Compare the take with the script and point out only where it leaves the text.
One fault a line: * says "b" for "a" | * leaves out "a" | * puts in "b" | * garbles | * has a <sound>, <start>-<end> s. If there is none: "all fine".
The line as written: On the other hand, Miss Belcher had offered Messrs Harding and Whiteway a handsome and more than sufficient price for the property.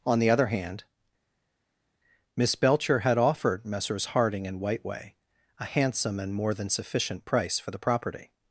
all fine